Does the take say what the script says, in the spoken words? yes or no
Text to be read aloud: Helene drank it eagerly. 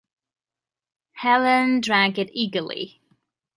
yes